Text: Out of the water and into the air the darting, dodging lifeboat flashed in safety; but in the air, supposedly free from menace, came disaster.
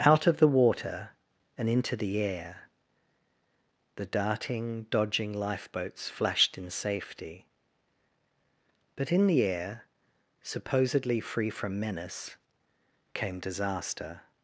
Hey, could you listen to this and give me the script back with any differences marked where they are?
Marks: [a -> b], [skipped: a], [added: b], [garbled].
Out of the water and into the air the darting, dodging [lifeboat -> lifeboats] flashed in safety; but in the air, supposedly free from menace, came disaster.